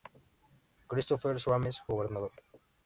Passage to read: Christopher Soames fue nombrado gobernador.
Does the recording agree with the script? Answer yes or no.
no